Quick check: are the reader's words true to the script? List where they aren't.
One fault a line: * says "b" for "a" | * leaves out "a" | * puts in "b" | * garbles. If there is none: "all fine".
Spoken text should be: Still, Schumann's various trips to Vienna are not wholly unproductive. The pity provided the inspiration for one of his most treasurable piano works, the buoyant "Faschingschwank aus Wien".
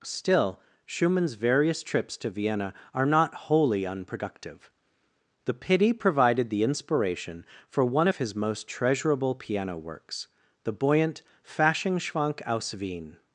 all fine